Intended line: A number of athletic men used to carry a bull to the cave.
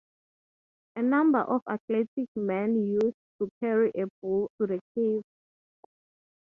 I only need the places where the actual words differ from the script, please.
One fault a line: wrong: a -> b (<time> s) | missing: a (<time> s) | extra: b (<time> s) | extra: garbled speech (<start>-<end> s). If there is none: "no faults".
no faults